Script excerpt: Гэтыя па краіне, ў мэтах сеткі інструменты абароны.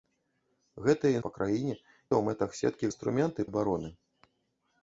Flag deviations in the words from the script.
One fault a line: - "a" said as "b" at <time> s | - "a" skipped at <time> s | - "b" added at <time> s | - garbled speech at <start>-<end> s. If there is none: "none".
none